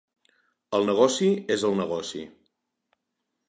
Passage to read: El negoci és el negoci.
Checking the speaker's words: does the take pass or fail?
pass